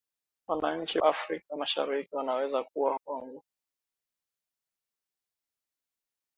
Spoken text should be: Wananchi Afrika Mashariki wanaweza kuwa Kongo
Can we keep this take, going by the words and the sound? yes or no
yes